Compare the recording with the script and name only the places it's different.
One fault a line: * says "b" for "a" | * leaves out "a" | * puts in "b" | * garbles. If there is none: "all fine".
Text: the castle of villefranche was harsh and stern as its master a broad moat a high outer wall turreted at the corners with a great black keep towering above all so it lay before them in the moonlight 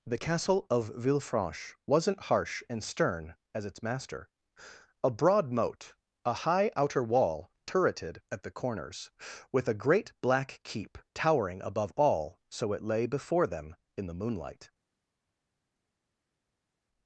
* says "wasn't" for "was"